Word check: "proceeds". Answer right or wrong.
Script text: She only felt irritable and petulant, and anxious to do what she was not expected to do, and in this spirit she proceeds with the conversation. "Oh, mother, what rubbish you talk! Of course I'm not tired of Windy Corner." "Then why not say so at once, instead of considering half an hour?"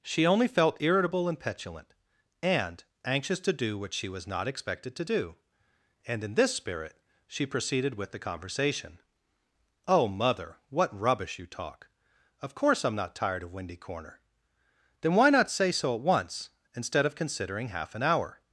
wrong